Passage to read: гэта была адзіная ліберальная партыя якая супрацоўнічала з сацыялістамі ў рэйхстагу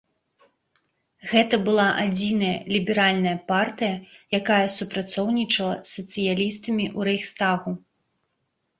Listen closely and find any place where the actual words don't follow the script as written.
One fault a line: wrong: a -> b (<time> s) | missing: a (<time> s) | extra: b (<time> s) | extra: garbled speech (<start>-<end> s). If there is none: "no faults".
no faults